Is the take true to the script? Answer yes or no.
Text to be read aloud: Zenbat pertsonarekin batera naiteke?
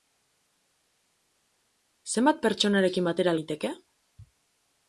yes